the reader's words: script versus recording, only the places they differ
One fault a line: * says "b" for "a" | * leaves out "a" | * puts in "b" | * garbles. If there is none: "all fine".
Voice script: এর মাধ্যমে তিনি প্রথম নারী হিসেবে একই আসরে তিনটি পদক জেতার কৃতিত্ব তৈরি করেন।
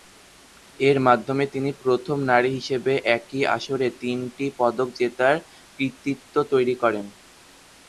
all fine